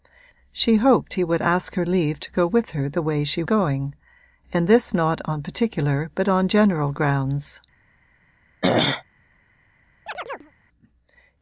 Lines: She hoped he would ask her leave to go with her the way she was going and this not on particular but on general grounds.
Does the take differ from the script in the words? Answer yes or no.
yes